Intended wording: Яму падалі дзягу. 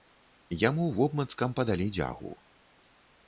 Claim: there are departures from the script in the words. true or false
true